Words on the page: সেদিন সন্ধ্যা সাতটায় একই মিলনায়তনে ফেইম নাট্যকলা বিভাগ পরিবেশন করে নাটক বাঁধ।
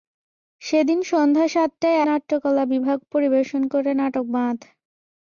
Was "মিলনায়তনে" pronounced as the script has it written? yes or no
no